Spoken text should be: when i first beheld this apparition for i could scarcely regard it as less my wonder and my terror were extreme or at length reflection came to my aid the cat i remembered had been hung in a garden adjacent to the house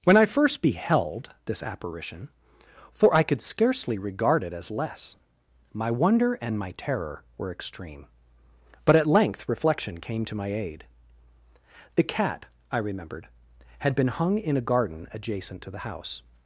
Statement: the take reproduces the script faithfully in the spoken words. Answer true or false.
false